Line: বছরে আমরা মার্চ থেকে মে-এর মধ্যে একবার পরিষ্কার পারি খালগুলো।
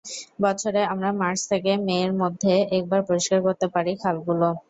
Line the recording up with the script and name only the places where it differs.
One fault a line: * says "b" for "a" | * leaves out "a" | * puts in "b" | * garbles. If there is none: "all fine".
* puts in "করতে"